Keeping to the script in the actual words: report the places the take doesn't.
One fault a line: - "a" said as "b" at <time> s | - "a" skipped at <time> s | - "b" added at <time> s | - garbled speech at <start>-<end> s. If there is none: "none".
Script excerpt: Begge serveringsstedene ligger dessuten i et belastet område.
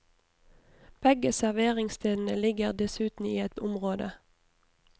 - "belastet" skipped at 3.5 s